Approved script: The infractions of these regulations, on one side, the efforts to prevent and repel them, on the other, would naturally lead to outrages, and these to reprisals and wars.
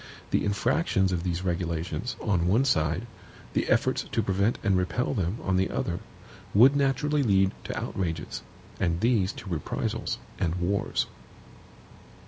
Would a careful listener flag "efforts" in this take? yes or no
no